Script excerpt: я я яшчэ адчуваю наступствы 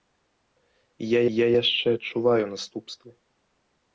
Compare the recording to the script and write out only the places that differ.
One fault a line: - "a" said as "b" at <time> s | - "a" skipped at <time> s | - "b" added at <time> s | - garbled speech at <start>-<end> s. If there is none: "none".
none